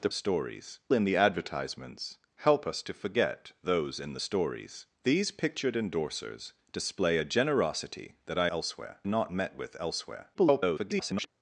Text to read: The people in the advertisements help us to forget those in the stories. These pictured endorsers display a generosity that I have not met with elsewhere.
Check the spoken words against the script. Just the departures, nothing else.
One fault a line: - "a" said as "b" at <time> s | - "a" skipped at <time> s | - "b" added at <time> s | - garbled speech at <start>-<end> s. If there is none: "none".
- "people" said as "stories" at 0.1 s
- "have" said as "elsewhere" at 8.5 s
- garbled speech at 10.3-11.3 s